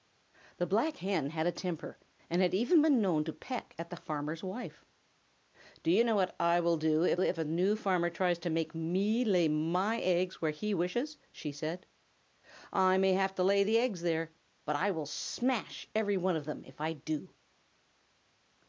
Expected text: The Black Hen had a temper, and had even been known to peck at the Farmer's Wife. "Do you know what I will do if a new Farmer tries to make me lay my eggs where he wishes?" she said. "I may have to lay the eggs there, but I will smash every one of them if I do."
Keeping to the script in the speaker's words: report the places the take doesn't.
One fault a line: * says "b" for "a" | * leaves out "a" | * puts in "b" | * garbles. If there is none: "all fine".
* puts in "if"